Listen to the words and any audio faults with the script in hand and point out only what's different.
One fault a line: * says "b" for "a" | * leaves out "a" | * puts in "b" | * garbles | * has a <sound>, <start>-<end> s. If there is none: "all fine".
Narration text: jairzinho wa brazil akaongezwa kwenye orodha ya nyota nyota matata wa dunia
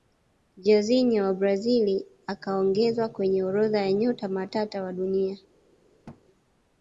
* leaves out "nyota"
* has a thud, 6.1-6.2 s